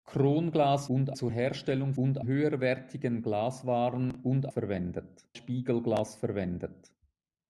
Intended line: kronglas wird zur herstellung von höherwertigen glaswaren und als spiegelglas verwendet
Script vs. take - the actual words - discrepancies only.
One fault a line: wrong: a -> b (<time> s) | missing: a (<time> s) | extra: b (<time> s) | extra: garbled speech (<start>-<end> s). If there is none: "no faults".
wrong: wird -> und (0.9 s)
wrong: von -> und (1.9 s)
wrong: als -> verwendet (4.5 s)